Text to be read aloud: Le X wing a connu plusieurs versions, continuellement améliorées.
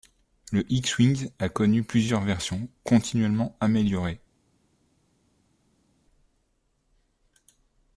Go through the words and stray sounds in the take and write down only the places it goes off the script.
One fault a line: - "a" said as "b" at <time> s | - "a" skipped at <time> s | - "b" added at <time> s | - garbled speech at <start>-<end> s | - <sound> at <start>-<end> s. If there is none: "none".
none